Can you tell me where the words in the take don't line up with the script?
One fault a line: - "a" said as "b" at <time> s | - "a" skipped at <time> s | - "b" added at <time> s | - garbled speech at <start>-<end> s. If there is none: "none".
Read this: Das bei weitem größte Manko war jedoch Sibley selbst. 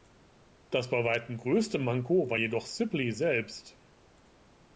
none